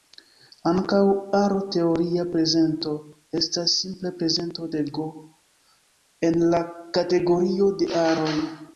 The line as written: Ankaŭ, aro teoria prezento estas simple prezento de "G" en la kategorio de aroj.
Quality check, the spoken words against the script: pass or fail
pass